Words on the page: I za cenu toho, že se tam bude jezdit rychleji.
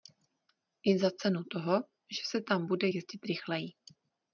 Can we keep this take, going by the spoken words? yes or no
yes